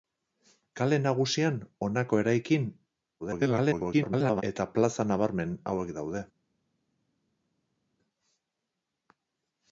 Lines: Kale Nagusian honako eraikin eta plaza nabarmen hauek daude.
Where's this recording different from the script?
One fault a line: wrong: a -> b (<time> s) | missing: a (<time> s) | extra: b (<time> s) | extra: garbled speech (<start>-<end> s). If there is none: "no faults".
extra: garbled speech (3.2-4.4 s)